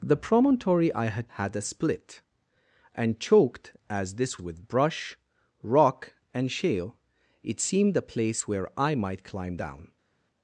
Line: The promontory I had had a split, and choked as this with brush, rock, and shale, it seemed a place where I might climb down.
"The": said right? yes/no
yes